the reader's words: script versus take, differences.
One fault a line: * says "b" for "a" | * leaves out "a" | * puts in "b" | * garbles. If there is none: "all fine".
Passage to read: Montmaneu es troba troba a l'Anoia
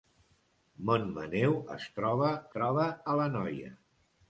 all fine